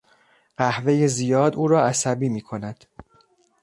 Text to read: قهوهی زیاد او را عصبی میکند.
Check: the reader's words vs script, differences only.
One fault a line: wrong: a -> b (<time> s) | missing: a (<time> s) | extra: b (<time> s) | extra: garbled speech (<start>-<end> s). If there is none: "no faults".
no faults